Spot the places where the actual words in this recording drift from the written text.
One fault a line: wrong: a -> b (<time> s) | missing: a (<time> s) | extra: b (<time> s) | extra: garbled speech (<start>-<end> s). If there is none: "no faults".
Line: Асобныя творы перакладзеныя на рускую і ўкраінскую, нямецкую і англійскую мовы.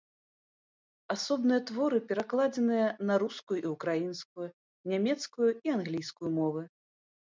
no faults